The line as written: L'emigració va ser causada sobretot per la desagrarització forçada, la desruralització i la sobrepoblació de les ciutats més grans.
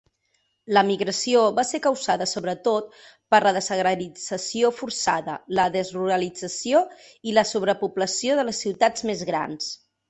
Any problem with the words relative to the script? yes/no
no